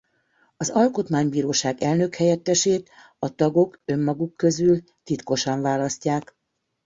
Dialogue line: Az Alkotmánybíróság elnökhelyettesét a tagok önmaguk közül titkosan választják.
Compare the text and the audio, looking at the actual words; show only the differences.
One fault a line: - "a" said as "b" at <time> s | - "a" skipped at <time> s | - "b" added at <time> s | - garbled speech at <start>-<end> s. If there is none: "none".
none